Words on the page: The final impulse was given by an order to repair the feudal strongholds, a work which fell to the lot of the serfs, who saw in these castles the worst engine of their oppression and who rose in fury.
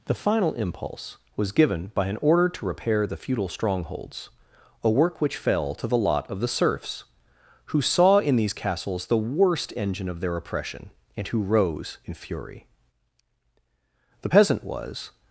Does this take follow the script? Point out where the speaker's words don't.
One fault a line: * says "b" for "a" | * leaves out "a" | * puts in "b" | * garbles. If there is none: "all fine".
* puts in "The peasant was"